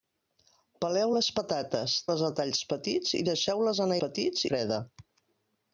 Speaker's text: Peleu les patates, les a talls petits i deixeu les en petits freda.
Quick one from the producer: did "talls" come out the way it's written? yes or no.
yes